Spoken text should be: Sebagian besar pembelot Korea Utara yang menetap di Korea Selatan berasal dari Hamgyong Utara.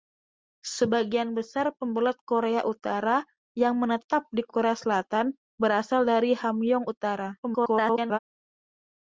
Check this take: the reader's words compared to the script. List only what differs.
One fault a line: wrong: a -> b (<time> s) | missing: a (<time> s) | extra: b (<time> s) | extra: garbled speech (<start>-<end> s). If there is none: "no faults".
extra: garbled speech (7.4-8.2 s)